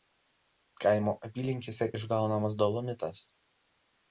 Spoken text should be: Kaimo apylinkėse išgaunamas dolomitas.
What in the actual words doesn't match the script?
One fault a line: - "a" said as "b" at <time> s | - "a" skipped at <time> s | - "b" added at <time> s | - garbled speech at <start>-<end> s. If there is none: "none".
none